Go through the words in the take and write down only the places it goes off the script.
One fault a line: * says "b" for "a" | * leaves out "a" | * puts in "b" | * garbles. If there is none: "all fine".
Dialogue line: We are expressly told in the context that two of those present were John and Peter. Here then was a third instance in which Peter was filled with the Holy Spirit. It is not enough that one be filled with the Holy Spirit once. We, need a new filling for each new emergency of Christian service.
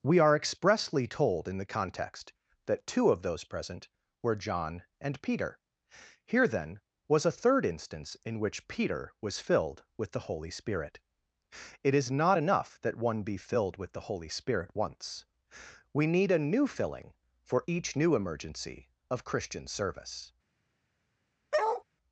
all fine